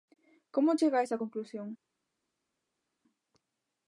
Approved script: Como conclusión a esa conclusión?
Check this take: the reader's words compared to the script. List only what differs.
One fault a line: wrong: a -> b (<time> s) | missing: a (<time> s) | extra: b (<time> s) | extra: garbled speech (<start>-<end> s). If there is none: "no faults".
wrong: conclusión -> chega (0.8 s)